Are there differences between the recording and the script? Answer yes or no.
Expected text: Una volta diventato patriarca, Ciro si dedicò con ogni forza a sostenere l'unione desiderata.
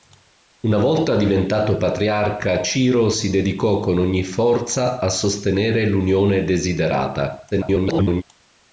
yes